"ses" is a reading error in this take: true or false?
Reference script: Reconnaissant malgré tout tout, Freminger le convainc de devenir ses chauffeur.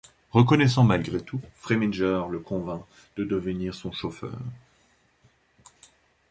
true